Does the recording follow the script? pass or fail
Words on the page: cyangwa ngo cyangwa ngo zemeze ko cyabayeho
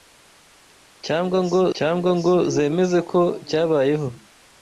pass